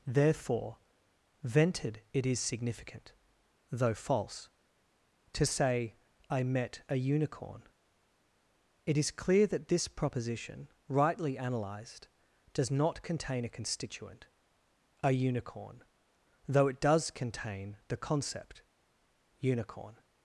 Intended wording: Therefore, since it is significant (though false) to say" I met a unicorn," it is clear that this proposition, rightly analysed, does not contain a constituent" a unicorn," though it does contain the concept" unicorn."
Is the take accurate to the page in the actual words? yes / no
no